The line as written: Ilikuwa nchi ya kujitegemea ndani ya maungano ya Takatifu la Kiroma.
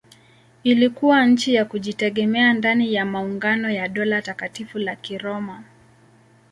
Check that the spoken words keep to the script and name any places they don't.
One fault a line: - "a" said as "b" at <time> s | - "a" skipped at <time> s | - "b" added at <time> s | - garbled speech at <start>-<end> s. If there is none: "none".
- "Dola" added at 3.9 s